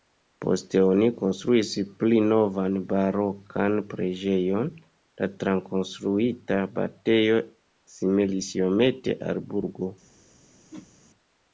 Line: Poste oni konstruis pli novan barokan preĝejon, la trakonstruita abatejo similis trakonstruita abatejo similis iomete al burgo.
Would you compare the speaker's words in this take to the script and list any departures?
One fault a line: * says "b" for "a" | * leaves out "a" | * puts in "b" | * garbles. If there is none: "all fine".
* leaves out "trakonstruita abatejo similis"